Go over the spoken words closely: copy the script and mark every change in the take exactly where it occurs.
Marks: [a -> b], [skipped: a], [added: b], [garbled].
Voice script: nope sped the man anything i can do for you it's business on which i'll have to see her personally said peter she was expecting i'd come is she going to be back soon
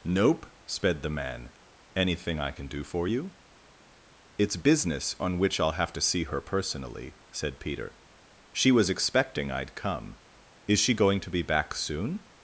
nope sped the man anything i can do for you it's business on which i'll have to see her personally said peter she was expecting i'd come is she going to be back soon